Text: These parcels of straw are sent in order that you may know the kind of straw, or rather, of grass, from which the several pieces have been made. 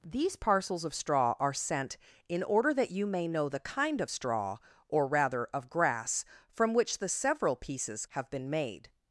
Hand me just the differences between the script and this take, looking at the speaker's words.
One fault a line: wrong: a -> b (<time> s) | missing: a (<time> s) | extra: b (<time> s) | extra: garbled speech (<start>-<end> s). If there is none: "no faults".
no faults